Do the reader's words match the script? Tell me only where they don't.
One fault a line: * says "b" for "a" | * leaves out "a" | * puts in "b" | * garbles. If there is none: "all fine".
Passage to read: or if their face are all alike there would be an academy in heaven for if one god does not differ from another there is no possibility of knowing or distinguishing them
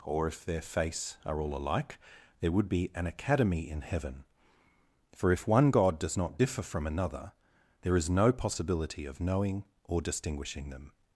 all fine